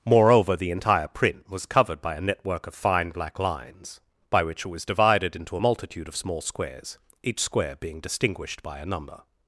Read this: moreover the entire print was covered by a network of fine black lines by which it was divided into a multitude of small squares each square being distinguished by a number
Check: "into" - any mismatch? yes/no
no